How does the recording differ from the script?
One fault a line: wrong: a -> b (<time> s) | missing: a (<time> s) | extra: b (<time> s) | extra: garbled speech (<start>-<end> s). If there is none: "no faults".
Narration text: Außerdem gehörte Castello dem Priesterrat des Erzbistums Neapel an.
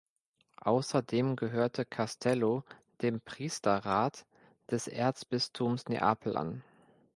no faults